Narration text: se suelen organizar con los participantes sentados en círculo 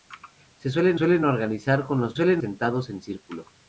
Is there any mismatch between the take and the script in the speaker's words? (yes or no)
yes